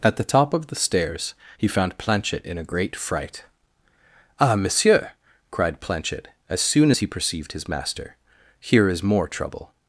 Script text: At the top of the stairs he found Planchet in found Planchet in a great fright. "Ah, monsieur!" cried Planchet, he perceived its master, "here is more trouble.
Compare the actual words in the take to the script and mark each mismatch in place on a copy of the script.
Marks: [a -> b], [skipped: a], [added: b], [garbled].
At the top of the stairs he found Planchet in [skipped: found Planchet in] a great fright. "Ah, monsieur!" cried Planchet, [added: as soon as] he perceived [its -> his] master, "here is more trouble.